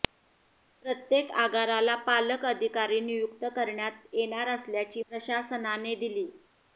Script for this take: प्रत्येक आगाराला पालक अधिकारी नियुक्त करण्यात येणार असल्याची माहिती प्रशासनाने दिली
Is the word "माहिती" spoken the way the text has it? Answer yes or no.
no